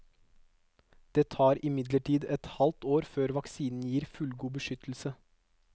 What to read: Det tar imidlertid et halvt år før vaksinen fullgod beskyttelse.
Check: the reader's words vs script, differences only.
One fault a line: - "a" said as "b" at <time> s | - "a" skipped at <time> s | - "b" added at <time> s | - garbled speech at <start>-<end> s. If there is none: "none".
- "gir" added at 3.9 s